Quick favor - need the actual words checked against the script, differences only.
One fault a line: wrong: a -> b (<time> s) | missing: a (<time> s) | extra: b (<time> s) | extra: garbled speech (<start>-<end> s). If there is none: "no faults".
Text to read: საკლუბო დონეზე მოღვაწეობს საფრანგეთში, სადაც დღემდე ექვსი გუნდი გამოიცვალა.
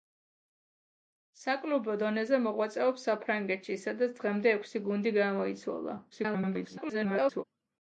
extra: garbled speech (6.1-7.4 s)